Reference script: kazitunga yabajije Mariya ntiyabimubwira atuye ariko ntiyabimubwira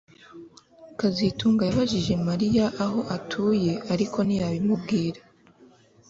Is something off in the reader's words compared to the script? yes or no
yes